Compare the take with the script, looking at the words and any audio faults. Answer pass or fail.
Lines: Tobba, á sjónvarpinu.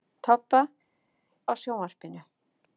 pass